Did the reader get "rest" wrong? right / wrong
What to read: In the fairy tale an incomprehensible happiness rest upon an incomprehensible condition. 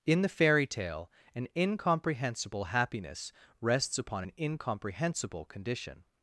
wrong